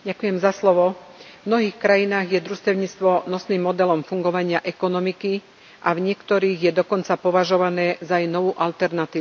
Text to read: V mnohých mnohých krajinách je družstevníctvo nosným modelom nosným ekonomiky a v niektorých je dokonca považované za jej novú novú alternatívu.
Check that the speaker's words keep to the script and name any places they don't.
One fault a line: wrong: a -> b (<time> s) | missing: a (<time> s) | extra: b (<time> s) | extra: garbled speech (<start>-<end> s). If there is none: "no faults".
missing: mnohých (1.8 s)
wrong: nosným -> fungovania (4.0 s)
missing: novú (8.6 s)